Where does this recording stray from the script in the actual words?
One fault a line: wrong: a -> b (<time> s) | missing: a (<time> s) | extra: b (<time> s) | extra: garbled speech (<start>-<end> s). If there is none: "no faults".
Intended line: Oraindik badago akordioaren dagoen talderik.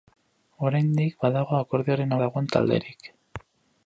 no faults